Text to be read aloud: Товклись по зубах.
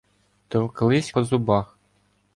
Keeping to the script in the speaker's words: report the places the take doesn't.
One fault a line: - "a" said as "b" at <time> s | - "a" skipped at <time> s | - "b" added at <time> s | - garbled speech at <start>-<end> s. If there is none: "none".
none